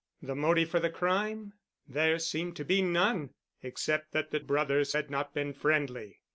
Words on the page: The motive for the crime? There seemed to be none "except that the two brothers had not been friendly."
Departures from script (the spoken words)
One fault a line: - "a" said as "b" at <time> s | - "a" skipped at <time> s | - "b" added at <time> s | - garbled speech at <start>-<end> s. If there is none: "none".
- "two" skipped at 4.4 s